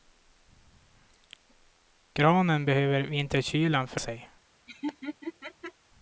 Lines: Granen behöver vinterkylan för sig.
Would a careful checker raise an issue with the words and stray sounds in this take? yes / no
yes